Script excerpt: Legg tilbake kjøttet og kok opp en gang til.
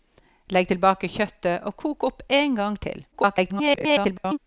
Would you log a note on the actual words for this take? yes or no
yes